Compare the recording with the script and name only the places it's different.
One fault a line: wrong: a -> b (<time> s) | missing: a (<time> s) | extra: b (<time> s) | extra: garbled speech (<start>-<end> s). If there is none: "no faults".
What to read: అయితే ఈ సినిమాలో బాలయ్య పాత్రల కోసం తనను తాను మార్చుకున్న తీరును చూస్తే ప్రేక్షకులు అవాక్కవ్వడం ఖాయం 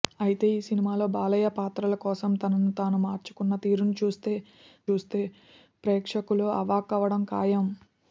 extra: చూస్తే (4.9 s)